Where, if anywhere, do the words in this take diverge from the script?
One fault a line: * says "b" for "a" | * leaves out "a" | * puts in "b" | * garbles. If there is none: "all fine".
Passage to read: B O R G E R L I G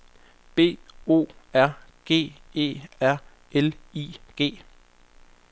all fine